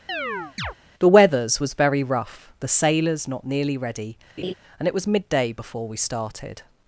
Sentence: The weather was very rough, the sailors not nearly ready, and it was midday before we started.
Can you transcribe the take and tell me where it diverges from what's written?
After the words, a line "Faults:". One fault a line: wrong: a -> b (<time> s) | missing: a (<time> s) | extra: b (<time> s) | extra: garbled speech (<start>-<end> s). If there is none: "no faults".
The weathers was very rough, the sailors not nearly ready, and it was midday before we started.
Faults:
wrong: weather -> weathers (1.1 s)